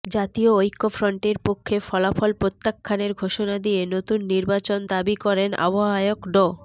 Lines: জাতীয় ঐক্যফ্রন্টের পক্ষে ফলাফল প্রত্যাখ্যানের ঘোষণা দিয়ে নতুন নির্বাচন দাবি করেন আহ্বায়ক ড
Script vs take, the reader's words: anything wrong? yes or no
no